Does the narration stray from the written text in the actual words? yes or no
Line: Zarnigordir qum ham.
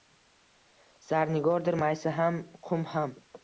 yes